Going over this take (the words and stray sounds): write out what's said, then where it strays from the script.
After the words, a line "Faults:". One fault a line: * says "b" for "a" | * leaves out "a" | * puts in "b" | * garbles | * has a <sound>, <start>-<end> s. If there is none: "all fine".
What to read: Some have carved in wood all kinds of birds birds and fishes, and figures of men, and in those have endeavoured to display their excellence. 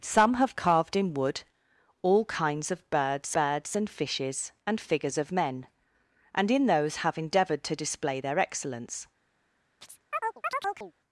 Some have carved in wood all kinds of birds birds and fishes, and figures of men, and in those have endeavoured to display their excellence.
Faults:
* has a chirp, 9.8-10.9 s